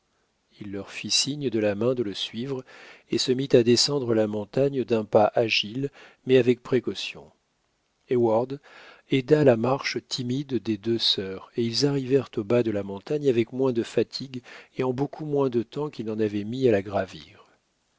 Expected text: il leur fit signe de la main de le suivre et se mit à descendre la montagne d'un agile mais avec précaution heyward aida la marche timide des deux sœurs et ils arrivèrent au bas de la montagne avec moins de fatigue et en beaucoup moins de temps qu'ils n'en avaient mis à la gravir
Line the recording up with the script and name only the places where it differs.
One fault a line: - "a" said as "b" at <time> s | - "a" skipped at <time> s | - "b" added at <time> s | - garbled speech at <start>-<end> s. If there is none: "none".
- "pas" added at 5.0 s